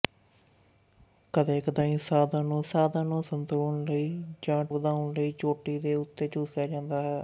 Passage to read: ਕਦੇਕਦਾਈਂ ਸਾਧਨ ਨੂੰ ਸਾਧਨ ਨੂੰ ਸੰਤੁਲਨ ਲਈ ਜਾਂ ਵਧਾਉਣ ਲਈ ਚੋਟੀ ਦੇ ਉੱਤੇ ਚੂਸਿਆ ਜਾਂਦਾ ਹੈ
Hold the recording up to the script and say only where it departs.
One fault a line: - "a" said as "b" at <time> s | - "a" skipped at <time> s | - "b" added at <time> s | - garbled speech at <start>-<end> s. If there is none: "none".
none